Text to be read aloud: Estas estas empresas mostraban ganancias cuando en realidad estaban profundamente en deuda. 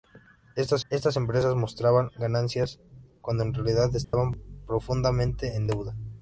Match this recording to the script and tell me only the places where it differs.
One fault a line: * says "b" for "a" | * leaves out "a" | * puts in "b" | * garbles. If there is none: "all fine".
all fine